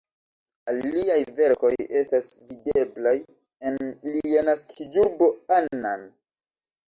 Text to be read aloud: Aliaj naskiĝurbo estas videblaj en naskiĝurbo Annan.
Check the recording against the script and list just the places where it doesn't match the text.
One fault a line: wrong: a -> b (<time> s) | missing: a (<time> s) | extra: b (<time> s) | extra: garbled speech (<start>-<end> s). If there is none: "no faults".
wrong: naskiĝurbo -> verkoj (1.4 s)
extra: lia (4.2 s)